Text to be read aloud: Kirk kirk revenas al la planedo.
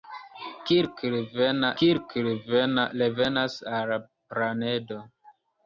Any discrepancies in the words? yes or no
no